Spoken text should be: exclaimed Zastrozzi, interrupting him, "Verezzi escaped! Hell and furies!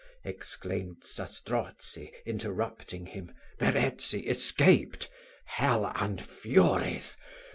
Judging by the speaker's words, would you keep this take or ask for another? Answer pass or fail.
pass